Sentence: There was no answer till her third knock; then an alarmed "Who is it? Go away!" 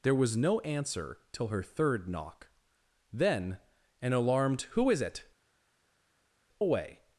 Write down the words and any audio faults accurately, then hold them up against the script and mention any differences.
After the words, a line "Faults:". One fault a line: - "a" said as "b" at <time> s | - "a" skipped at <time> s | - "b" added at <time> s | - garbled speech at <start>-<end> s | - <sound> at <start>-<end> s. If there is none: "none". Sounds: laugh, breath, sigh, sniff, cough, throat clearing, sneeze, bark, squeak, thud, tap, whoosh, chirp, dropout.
There was no answer till her third knock; then an alarmed "Who is it? Away!"
Faults:
- "Go" skipped at 5.2 s